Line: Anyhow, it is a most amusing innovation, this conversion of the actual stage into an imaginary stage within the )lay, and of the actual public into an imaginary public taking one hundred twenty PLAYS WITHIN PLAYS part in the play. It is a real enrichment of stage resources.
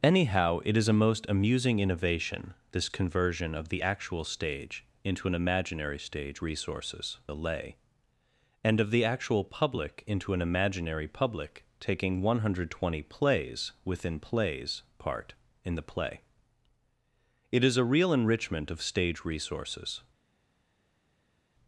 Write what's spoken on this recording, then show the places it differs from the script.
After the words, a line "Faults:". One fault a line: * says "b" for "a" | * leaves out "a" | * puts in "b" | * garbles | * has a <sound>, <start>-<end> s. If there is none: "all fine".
Anyhow, it is a most amusing innovation, this conversion of the actual stage into an imaginary stage resources the )lay, and of the actual public into an imaginary public taking one hundred twenty PLAYS WITHIN PLAYS part in the play. It is a real enrichment of stage resources.
Faults:
* says "resources" for "within"